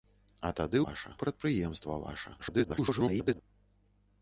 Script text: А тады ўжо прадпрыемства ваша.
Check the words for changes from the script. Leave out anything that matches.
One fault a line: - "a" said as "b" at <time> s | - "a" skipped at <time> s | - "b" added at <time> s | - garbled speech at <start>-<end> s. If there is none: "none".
- "ўжо" said as "ваша" at 0.8 s
- garbled speech at 2.4-3.4 s